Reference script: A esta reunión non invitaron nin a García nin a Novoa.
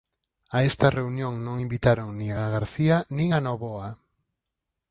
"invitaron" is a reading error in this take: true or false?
false